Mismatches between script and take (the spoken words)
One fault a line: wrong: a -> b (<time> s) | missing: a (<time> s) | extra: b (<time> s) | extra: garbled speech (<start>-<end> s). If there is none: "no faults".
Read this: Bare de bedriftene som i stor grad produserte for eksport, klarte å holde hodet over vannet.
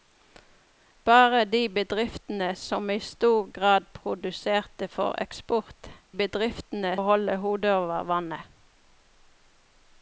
wrong: klarte -> bedriftene (6.2 s)